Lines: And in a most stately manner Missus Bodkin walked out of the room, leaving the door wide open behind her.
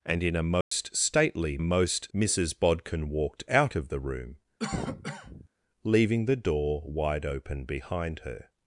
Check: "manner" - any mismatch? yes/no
yes